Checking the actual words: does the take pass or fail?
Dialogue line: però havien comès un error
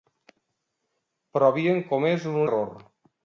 pass